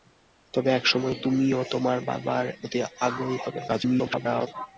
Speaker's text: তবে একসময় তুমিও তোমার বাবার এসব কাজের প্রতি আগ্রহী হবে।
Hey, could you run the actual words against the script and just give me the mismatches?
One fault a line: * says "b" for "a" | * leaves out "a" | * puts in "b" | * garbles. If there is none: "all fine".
* leaves out "এসব কাজের"
* garbles